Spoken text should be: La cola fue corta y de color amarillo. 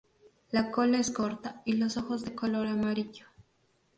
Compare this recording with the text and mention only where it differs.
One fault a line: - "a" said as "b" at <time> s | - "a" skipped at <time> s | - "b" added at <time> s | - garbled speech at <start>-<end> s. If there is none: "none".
- "fue" said as "es" at 1.0 s
- "los ojos" added at 1.7 s